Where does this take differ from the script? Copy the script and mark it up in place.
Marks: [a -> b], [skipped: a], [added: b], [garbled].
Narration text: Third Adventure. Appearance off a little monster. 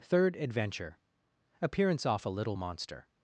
Third Adventure. Appearance off a little monster.